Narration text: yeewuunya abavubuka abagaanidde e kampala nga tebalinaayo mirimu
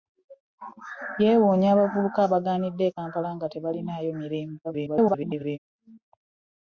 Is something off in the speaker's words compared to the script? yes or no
yes